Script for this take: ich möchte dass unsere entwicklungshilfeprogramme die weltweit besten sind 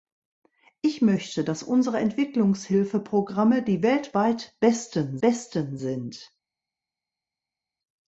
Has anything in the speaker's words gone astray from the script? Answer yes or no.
yes